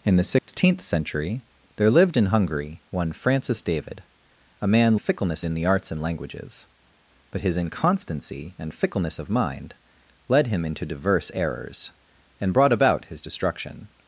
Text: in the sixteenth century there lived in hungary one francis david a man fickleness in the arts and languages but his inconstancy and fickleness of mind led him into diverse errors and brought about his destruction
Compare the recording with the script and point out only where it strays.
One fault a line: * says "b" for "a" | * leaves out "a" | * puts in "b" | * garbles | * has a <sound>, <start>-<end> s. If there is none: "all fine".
* has a dropout, 0.4-0.5 s